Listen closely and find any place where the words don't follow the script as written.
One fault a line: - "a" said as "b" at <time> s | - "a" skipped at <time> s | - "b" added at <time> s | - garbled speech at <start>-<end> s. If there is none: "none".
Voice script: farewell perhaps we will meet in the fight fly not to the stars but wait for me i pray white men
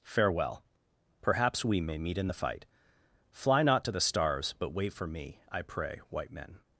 - "will" said as "may" at 1.8 s